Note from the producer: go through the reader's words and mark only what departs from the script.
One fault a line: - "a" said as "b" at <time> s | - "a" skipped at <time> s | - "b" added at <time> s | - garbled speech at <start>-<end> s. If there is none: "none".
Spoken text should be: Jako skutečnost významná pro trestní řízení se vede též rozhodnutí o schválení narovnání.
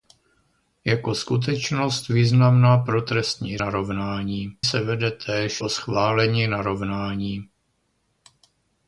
- "řízení" said as "narovnání" at 3.6 s
- "rozhodnutí" skipped at 5.6 s